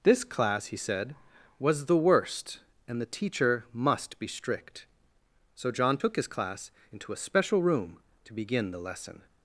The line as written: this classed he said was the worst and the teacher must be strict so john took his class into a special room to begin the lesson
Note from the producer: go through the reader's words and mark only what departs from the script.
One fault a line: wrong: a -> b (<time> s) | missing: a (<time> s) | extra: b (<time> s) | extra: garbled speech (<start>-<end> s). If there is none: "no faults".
wrong: classed -> class (0.2 s)